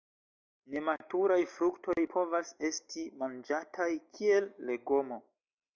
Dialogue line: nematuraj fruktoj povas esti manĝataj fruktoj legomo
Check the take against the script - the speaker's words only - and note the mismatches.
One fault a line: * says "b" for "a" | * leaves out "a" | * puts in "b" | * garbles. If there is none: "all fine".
* says "kiel" for "fruktoj"